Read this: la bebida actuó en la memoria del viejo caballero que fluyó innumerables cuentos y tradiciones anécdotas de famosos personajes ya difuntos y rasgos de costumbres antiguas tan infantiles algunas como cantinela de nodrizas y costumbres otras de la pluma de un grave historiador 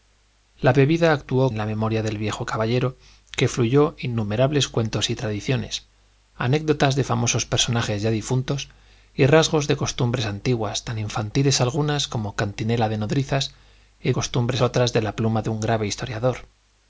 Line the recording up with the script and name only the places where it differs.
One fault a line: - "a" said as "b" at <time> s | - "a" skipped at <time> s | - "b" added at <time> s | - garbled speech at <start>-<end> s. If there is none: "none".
none